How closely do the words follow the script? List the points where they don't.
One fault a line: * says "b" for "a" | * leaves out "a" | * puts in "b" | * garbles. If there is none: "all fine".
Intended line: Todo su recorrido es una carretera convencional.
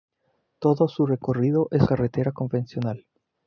* leaves out "una"